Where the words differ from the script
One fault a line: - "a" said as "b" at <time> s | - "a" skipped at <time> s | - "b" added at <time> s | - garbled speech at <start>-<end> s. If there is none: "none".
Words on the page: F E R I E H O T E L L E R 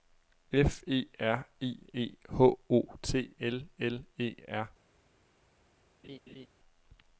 - "E" skipped at 3.4 s